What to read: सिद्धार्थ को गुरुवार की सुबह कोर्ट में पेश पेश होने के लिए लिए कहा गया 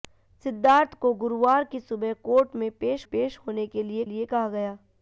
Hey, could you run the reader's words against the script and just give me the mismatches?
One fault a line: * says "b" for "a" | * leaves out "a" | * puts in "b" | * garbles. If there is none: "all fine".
all fine